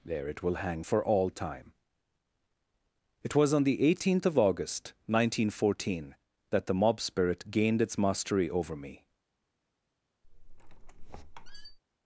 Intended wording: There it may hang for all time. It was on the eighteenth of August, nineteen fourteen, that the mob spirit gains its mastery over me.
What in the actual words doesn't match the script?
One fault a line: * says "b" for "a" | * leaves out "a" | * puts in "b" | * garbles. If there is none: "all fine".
* says "will" for "may"
* says "gained" for "gains"